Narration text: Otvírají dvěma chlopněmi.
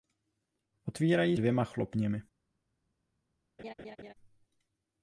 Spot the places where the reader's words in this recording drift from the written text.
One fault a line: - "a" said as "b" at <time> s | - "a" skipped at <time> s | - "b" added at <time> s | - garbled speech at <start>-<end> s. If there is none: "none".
none